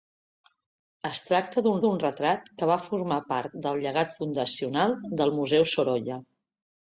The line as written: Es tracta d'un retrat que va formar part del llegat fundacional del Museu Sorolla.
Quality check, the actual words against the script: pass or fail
fail